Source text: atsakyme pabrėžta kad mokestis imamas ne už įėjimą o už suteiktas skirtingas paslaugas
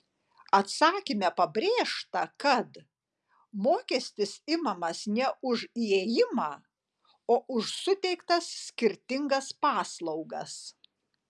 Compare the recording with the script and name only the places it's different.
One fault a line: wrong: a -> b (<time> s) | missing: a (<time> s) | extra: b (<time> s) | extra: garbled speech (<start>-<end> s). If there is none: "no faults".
no faults